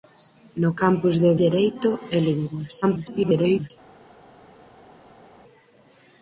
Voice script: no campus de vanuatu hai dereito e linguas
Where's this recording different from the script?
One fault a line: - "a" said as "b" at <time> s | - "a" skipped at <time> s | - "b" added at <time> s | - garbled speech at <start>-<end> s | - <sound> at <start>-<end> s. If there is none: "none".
- "vanuatu hai" skipped at 1.3 s
- garbled speech at 2.8-3.7 s